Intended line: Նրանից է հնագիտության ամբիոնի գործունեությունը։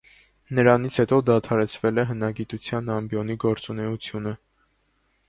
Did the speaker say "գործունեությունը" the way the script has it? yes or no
yes